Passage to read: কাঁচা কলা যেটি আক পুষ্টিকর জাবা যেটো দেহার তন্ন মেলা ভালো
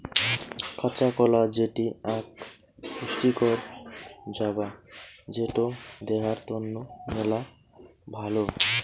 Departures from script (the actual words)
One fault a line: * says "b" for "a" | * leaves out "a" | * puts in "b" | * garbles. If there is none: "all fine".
all fine